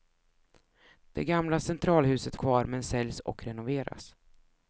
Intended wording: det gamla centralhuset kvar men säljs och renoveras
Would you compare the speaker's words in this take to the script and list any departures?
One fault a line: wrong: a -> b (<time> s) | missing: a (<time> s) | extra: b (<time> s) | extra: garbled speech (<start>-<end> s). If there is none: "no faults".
no faults